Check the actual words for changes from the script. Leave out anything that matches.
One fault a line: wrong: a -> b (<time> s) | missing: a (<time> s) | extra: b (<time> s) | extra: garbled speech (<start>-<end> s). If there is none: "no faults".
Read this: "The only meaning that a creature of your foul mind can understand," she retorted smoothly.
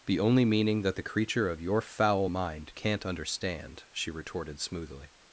wrong: a -> the (1.0 s)
wrong: can -> can't (2.7 s)